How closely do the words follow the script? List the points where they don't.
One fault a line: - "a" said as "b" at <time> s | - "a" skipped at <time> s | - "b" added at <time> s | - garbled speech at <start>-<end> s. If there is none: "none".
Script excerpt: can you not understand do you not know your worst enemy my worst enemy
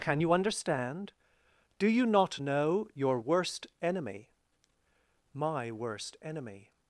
- "not" skipped at 0.3 s